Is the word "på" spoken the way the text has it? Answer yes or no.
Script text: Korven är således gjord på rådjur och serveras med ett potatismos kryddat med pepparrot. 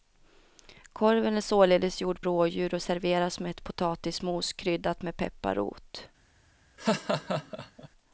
no